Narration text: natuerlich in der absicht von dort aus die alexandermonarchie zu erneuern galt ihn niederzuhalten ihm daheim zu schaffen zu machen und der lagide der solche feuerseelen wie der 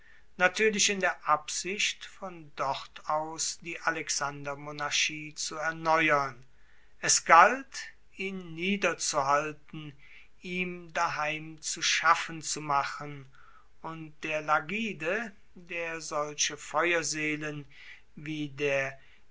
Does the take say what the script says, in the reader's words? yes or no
no